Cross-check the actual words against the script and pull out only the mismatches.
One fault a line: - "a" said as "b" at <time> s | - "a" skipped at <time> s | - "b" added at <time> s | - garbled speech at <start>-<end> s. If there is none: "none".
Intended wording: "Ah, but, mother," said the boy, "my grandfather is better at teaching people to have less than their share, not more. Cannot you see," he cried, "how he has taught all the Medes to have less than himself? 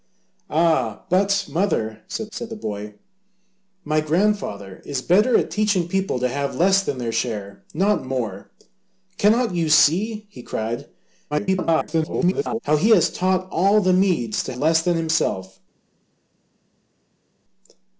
- "said" added at 2.3 s
- garbled speech at 11.3-12.6 s
- "have" skipped at 14.5 s